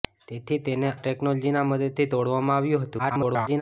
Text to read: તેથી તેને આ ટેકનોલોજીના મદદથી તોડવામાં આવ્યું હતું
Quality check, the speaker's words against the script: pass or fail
fail